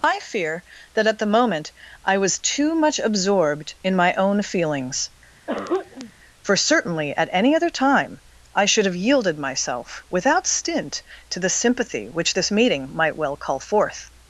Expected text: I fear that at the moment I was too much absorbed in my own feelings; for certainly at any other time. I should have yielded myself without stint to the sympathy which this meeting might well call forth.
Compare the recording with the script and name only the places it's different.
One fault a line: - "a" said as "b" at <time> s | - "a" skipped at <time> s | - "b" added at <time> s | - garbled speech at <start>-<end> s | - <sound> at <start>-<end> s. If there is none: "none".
- throat clearing at 5.5-6.1 s